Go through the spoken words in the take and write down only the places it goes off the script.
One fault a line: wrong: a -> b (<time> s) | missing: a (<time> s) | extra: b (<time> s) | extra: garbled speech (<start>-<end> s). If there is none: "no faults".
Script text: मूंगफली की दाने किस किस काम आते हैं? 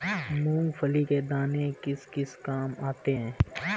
wrong: की -> के (1.0 s)